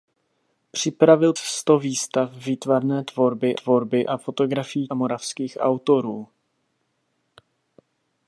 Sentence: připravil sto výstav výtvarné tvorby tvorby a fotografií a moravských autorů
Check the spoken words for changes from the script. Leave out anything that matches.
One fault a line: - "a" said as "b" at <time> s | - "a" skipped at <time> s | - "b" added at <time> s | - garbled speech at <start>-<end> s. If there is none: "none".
none